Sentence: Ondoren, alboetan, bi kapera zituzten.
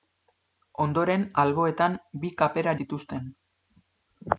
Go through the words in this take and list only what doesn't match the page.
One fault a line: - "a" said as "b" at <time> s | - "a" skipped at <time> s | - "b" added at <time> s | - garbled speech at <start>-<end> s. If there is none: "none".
none